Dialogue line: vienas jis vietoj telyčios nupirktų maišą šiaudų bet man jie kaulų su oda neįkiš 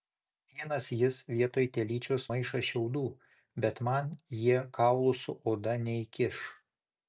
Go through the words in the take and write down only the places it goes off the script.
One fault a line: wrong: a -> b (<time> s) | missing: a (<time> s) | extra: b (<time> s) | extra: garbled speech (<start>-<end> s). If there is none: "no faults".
missing: nupirktų (2.2 s)